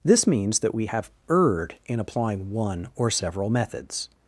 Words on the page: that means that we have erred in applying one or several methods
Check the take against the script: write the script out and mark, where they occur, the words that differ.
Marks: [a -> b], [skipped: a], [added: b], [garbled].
[that -> this] means that we have erred in applying one or several methods